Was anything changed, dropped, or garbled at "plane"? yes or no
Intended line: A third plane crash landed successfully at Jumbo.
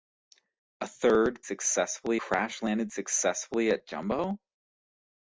yes